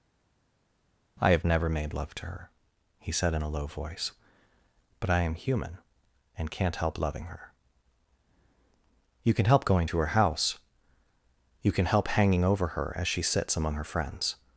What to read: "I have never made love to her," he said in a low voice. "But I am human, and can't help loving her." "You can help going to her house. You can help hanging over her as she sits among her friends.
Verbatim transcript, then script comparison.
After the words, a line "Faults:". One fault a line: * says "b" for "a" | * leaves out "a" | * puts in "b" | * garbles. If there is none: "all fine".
"I have never made love to her," he said in a low voice. "But I am human, and can't help loving her." "You can help going to her house. You can help hanging over her as she sits among her friends.
Faults:
all fine